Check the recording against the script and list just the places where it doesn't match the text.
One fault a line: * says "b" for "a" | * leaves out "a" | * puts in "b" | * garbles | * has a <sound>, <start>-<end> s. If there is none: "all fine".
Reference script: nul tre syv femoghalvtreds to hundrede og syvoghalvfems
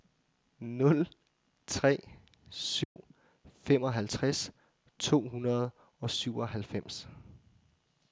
* has a dropout, 2.8-3.0 s